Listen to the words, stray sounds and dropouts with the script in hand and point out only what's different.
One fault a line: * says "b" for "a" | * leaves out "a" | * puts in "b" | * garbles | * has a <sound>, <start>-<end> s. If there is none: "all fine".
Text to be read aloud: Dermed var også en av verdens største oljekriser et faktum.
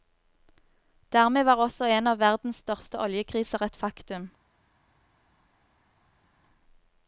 all fine